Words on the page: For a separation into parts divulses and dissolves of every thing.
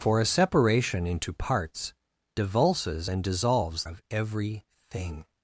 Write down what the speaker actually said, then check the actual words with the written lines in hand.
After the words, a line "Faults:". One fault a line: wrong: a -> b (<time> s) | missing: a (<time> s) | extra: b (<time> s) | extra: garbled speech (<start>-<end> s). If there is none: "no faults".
For a separation into parts divulses and dissolves of every thing.
Faults:
no faults